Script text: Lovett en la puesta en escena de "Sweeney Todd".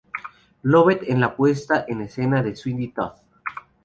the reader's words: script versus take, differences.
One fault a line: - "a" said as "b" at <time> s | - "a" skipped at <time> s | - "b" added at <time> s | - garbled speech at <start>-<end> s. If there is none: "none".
none